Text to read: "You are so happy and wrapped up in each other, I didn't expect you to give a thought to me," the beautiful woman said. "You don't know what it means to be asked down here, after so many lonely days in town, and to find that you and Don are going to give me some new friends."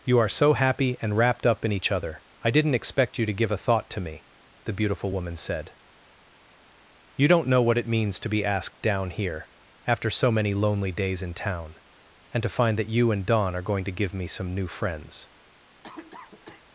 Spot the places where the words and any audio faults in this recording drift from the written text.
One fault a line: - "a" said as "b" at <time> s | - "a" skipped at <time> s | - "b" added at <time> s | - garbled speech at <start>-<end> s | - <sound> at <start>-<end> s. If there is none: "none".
- cough at 15.8-16.6 s